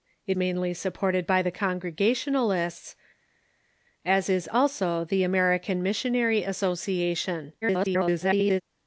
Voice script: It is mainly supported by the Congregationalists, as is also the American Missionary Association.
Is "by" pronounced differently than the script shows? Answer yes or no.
no